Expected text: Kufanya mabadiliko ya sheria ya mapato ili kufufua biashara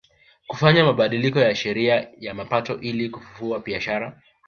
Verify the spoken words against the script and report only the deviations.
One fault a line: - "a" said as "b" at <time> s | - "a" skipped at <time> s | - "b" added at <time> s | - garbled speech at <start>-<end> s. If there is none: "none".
none